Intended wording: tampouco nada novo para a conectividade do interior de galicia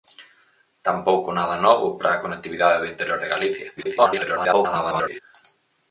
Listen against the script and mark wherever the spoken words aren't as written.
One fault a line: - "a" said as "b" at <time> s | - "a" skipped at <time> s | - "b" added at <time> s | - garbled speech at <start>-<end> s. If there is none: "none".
- garbled speech at 3.8-5.2 s